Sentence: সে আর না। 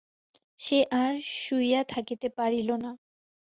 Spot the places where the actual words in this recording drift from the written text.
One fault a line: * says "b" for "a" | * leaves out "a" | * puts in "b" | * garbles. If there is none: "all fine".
* puts in "শুইয়া থাকিতে পারিল"